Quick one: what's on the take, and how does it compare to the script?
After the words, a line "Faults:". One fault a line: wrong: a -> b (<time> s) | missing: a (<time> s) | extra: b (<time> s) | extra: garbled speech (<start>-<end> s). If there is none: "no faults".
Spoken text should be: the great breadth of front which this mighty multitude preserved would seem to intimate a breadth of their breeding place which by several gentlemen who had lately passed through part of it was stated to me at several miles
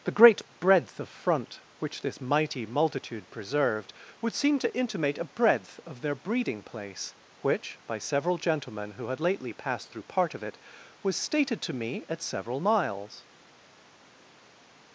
the great breadth of front which this mighty multitude preserved would seem to intimate a breadth of their breeding place which by several gentlemen who had lately passed through part of it was stated to me at several miles
Faults:
no faults